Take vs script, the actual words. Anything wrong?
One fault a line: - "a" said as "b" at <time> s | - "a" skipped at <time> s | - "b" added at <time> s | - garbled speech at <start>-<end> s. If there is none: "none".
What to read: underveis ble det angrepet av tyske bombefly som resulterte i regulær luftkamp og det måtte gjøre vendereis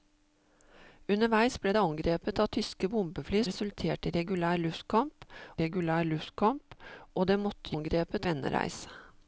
- "som" skipped at 3.4 s
- "regulær luftkamp" added at 5.6 s
- "gjøre" said as "angrepet" at 7.7 s